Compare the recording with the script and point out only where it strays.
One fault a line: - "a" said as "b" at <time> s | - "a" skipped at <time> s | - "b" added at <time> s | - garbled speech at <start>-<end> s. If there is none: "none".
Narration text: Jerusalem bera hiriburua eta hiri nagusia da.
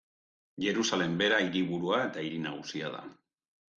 none